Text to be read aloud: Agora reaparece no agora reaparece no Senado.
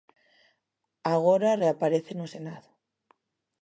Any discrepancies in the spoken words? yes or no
yes